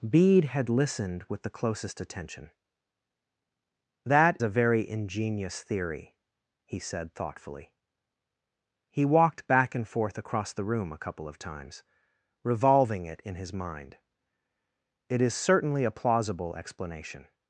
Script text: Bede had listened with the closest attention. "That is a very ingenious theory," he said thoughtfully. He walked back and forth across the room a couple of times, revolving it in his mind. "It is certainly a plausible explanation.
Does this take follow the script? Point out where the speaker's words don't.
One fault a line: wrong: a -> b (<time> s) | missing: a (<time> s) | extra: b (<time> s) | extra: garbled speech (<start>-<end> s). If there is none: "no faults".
missing: is (4.4 s)